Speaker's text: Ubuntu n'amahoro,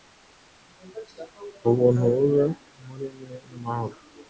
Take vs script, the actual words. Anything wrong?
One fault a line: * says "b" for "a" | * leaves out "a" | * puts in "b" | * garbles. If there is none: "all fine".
* puts in "bube muri mwe"